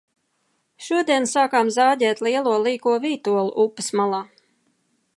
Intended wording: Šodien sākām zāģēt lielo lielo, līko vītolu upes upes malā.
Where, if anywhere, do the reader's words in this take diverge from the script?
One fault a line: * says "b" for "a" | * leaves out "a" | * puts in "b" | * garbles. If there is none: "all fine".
* leaves out "lielo"
* leaves out "upes"